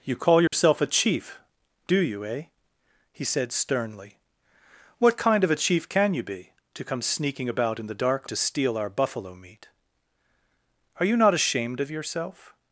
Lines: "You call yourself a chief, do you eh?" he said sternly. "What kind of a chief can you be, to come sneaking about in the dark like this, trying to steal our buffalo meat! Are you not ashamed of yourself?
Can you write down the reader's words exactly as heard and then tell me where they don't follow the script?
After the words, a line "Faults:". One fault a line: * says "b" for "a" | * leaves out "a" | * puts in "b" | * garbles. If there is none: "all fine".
"You call yourself a chief, do you eh?" he said sternly. "What kind of a chief can you be, to come sneaking about in the dark to steal our buffalo meat! Are you not ashamed of yourself?
Faults:
* leaves out "like this trying"